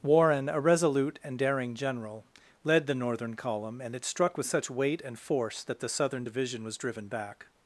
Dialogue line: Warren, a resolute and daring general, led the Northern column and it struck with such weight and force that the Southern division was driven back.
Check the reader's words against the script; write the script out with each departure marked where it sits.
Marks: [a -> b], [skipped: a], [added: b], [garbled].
Warren, a resolute and daring general, led the Northern column and it struck with such weight and force that the Southern division was driven back.